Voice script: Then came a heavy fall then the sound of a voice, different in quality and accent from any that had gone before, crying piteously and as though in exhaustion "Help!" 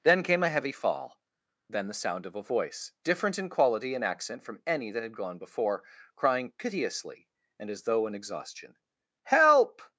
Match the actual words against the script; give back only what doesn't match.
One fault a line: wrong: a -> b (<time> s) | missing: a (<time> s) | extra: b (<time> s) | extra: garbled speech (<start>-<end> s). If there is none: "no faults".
no faults